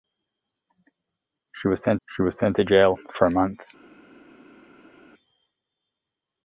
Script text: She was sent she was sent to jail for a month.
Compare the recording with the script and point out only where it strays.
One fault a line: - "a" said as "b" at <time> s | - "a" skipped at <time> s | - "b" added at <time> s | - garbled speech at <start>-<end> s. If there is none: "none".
none